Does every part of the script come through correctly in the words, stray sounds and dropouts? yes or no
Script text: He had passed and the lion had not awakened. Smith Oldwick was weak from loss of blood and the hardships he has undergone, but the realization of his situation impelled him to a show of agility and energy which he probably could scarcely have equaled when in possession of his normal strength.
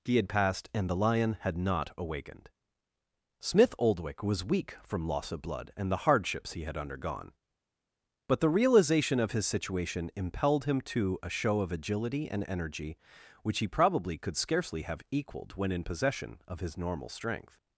no